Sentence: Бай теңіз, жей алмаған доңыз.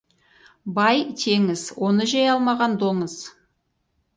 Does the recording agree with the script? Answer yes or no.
no